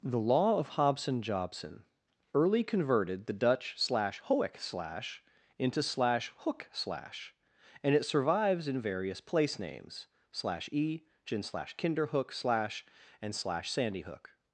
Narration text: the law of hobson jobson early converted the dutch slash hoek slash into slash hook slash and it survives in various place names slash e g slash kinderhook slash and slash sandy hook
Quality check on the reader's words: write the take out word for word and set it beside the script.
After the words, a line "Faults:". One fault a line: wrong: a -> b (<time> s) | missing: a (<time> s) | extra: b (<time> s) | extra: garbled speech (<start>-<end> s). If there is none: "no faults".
the law of hobson jobson early converted the dutch slash hoek slash into slash hook slash and it survives in various place names slash e gin slash kinderhook slash and slash sandy hook
Faults:
wrong: g -> gin (11.3 s)